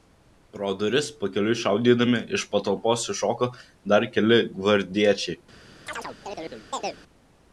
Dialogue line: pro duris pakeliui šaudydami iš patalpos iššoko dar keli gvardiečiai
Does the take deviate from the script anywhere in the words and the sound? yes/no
yes